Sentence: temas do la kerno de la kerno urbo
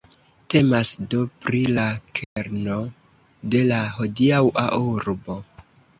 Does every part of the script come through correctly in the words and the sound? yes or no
no